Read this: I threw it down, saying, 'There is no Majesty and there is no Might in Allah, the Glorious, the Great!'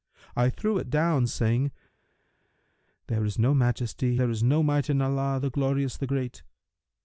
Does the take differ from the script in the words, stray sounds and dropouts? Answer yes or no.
yes